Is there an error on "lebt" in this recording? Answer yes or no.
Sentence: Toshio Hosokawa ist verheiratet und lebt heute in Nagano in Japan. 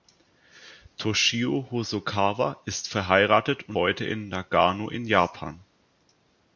yes